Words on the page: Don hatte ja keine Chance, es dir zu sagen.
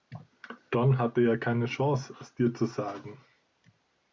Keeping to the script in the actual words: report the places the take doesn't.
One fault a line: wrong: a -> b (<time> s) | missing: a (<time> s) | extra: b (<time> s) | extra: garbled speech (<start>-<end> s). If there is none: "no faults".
no faults